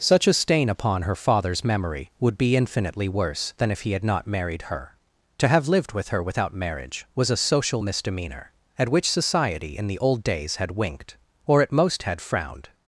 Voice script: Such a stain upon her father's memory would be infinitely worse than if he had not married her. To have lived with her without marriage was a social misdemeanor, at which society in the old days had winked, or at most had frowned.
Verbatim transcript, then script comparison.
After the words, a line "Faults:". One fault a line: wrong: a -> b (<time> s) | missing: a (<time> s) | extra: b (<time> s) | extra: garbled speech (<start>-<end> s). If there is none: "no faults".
Such a stain upon her father's memory would be infinitely worse than if he had not married her. To have lived with her without marriage was a social misdemeanor, at which society in the old days had winked, or at most had frowned.
Faults:
no faults